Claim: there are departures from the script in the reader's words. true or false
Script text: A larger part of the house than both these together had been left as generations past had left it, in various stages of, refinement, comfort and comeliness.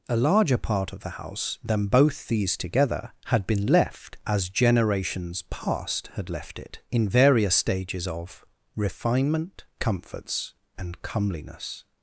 true